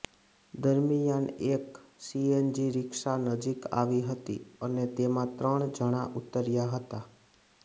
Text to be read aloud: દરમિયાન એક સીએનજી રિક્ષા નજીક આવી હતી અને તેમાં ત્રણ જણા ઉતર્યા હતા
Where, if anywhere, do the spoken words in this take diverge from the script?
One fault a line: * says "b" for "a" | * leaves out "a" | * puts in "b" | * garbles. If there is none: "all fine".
all fine